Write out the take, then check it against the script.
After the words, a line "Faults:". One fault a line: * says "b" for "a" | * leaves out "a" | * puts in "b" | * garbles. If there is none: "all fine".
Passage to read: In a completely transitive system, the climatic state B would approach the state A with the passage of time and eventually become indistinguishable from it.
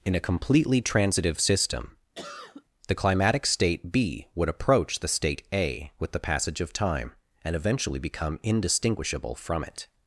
In a completely transitive system, the climatic state B would approach the state A with the passage of time and eventually become indistinguishable from it.
Faults:
all fine